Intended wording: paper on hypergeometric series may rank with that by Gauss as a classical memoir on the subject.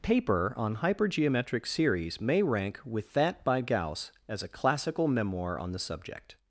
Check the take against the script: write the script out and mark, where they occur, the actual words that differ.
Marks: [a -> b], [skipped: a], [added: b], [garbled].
paper on hypergeometric series may rank with that by Gauss as a classical memoir on the subject.